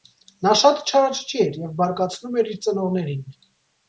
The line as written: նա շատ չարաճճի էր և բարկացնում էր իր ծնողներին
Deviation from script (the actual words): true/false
false